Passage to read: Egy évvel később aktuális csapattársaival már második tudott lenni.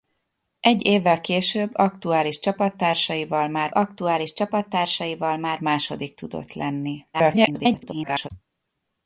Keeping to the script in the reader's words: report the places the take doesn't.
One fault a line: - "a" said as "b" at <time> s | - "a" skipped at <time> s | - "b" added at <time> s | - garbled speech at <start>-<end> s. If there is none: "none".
- "aktuális csapattársaival már" added at 3.7 s
- garbled speech at 7.1-8.3 s